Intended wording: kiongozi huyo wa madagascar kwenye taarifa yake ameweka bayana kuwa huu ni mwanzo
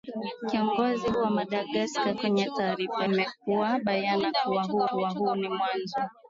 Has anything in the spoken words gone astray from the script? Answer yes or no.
yes